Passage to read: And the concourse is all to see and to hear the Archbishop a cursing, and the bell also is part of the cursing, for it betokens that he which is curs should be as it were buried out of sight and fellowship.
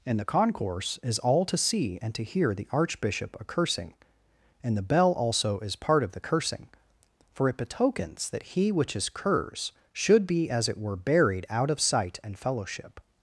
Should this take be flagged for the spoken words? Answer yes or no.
no